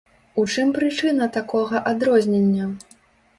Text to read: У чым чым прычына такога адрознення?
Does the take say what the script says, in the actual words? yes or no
no